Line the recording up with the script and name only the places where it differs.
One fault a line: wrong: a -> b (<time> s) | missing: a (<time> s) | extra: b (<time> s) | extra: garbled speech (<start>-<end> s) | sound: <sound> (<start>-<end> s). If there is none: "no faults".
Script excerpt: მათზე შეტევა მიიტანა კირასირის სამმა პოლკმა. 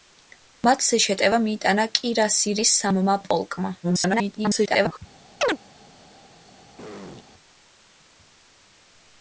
extra: garbled speech (3.8-5.0 s)
sound: chirp (5.4-5.6 s)
sound: throat clearing (6.8-7.2 s)